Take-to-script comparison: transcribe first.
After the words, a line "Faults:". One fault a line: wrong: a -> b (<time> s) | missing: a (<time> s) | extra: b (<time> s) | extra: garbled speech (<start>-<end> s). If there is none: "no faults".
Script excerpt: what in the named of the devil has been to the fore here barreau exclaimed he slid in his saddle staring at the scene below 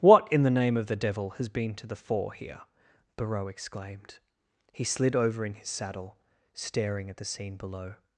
what in the name of the devil has been to the fore here barreau exclaimed he slid over in his saddle staring at the scene below
Faults:
wrong: named -> name (0.5 s)
extra: over (5.2 s)